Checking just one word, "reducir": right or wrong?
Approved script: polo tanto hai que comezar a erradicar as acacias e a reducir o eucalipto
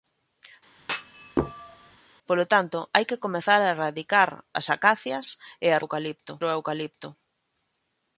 wrong